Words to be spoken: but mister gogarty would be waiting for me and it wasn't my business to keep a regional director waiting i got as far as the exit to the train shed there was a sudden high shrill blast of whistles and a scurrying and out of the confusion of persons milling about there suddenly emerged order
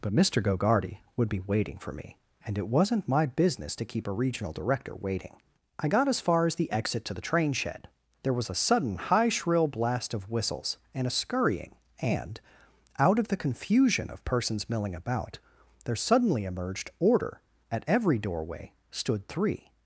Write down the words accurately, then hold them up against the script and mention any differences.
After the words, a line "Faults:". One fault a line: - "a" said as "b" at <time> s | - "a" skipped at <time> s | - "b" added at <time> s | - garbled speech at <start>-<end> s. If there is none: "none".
but mister gogarty would be waiting for me and it wasn't my business to keep a regional director waiting i got as far as the exit to the train shed there was a sudden high shrill blast of whistles and a scurrying and out of the confusion of persons milling about there suddenly emerged order at every doorway stood three
Faults:
- "at every doorway stood three" added at 17.7 s